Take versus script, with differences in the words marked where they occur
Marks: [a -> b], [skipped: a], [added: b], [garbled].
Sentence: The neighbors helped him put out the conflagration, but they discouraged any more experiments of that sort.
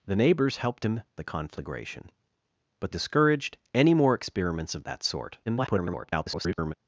The neighbors helped him [skipped: put out] the conflagration, but [skipped: they] discouraged any more experiments of that sort. [garbled]